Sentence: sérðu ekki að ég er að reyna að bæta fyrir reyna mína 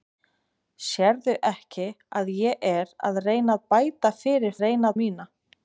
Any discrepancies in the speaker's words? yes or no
no